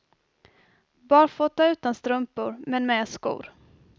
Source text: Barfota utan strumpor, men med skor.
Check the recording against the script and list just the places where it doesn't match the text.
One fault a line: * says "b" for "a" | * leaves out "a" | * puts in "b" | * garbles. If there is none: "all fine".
all fine